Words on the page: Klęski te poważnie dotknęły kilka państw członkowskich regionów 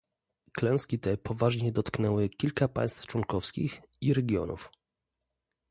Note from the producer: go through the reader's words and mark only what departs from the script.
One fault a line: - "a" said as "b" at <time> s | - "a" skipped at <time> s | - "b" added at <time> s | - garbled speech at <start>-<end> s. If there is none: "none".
- "i" added at 4.0 s